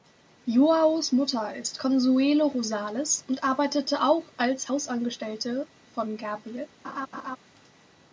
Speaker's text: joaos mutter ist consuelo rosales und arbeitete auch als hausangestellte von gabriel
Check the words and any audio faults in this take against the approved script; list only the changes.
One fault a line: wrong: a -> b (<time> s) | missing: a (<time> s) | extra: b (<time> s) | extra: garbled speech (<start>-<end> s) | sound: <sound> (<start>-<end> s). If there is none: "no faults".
sound: laugh (6.8-7.4 s)